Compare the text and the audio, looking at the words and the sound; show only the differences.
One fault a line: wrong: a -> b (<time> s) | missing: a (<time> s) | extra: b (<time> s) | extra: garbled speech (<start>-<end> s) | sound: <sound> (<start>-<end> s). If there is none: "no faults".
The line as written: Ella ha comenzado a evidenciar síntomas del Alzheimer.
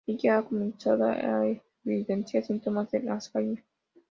no faults